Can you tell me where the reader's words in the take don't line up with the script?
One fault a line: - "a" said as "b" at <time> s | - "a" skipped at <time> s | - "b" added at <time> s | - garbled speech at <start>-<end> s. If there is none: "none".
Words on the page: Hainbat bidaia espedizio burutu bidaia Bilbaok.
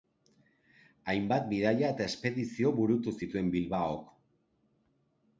- "eta" added at 1.9 s
- "bidaia" said as "zituen" at 3.2 s